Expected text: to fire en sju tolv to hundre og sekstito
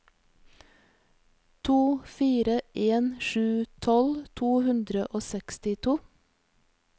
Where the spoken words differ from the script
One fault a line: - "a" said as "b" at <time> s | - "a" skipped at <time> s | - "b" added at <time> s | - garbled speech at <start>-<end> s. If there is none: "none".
none